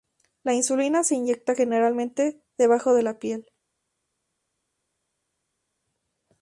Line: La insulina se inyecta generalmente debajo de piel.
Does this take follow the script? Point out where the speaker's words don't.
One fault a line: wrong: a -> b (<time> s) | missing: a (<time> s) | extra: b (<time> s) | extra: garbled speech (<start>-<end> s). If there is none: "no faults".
extra: la (3.0 s)